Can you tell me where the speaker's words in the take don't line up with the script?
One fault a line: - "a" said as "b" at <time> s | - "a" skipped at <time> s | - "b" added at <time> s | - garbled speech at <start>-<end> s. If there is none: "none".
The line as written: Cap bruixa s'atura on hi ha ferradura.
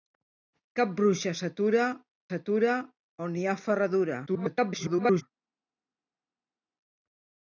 - "s'atura" added at 2.3 s
- garbled speech at 4.3-5.2 s